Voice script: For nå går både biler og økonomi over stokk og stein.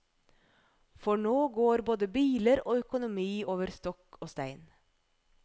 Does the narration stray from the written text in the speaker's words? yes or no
no